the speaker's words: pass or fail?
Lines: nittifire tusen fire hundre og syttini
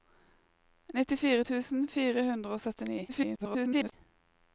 fail